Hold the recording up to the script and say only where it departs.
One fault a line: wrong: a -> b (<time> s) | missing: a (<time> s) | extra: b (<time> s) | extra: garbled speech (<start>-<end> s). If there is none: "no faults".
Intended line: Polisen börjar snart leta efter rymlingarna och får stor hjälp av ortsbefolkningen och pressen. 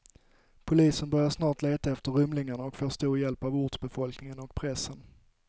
no faults